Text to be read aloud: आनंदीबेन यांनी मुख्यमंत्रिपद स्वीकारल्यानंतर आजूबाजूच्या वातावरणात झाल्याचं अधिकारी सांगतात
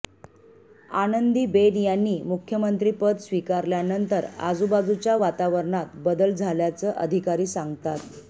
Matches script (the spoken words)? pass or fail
fail